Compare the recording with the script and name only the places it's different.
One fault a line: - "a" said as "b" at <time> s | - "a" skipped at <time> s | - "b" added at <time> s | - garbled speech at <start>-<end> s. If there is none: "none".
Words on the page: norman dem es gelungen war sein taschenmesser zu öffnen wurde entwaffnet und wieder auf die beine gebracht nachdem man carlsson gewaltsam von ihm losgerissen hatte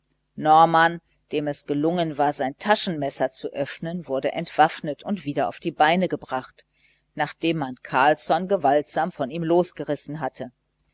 none